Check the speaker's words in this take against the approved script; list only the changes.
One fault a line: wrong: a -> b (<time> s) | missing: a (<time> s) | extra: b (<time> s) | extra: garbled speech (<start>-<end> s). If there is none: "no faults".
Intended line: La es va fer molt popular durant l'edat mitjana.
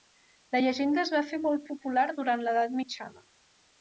extra: llegenda (0.7 s)